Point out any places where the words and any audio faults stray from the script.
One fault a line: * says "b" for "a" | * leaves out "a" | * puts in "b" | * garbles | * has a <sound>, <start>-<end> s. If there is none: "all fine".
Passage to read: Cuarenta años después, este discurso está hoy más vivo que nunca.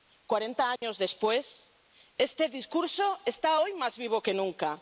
* has a dropout, 0.8-0.8 s